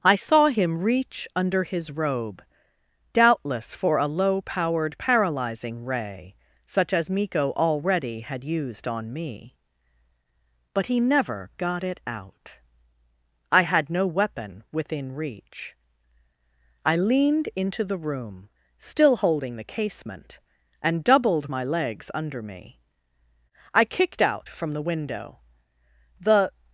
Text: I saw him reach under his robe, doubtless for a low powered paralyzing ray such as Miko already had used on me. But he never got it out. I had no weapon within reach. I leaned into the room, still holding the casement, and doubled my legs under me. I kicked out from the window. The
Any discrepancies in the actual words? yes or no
no